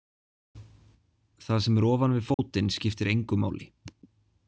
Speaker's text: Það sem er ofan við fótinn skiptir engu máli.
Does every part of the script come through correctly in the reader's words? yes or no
yes